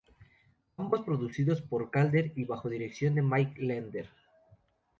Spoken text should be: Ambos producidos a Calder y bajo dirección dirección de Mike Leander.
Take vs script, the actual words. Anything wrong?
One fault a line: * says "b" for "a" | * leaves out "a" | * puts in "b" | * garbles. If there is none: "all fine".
* says "por" for "a"
* leaves out "dirección"